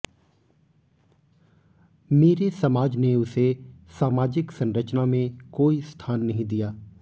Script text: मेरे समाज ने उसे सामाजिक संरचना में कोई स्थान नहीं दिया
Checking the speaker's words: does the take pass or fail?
pass